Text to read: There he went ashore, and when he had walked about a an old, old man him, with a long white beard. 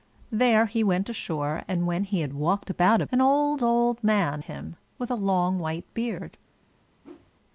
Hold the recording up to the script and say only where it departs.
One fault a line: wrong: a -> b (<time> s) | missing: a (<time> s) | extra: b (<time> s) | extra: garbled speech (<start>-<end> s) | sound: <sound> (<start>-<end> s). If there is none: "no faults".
sound: whoosh (7.0-7.3 s)